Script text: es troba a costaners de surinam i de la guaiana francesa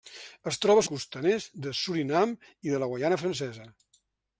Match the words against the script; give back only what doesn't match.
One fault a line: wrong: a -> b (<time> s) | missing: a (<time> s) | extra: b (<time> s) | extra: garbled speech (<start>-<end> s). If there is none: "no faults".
no faults